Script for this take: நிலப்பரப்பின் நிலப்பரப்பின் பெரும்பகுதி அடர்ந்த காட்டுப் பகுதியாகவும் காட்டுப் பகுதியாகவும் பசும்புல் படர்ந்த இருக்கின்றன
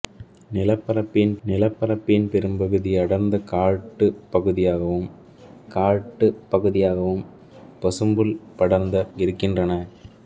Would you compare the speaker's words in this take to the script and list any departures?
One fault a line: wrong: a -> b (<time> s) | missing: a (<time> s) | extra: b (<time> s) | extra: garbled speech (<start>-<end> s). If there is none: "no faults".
no faults